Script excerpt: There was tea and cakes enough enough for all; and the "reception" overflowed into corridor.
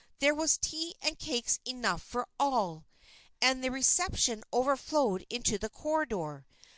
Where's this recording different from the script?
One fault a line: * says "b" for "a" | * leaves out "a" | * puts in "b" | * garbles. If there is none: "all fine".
* leaves out "enough"
* puts in "the"